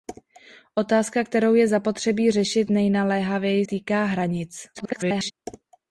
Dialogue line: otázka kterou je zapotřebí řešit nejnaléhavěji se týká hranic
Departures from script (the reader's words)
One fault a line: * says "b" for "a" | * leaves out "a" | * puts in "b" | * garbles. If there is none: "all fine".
* leaves out "se"
* garbles